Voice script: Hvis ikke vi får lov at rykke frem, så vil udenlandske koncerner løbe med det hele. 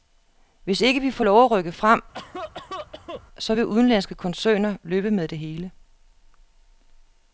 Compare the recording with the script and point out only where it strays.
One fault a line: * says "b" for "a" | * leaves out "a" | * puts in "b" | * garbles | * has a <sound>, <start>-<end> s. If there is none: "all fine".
* has a cough, 2.1-3.2 s